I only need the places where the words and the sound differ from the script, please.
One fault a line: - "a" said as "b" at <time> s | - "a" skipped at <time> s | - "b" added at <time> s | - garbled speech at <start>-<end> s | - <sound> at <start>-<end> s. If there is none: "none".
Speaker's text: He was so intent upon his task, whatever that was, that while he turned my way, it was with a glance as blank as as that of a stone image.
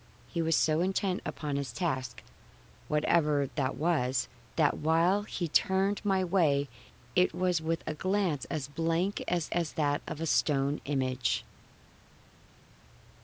none